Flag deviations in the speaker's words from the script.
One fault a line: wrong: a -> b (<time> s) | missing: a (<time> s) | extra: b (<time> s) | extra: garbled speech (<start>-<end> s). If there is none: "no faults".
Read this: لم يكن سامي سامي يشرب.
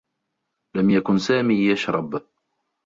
missing: سامي (1.5 s)